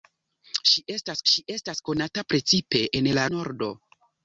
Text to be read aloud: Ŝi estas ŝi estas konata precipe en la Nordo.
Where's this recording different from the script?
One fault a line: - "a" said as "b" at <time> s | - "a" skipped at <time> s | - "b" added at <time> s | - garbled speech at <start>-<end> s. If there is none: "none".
none